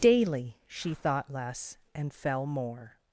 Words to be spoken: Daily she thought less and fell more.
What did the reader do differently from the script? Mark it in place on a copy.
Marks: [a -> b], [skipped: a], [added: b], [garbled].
Daily she thought less and fell more.